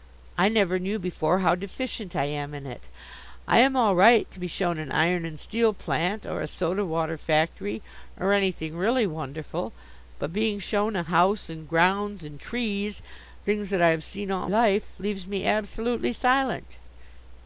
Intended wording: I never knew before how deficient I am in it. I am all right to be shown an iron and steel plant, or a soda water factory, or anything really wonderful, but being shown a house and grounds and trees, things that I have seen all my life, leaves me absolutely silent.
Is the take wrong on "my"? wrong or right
wrong